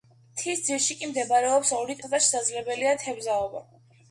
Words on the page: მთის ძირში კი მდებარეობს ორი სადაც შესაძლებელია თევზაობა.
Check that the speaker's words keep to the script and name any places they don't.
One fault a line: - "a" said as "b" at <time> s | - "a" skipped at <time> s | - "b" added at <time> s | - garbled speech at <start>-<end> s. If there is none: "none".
none